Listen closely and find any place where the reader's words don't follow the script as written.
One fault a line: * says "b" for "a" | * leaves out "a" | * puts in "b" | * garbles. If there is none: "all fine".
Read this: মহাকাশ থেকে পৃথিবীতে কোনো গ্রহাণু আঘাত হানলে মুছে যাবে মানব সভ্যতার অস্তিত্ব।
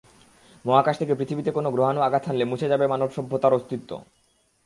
all fine